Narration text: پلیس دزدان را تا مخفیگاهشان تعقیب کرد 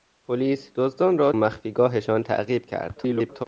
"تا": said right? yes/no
no